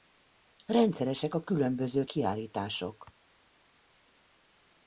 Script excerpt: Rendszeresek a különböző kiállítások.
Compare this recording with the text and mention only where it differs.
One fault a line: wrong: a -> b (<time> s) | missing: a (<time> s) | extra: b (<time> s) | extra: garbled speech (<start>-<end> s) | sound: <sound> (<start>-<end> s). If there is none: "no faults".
no faults